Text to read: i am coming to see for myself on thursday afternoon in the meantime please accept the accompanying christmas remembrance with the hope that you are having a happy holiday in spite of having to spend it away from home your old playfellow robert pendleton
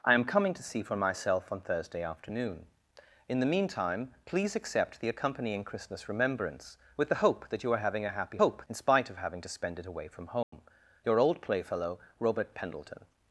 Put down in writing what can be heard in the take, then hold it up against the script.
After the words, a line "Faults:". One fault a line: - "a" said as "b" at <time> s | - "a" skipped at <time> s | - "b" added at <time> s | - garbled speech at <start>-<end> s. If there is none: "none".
i am coming to see for myself on thursday afternoon in the meantime please accept the accompanying christmas remembrance with the hope that you are having a happy hope in spite of having to spend it away from home your old playfellow robert pendleton
Faults:
- "holiday" said as "hope" at 8.4 s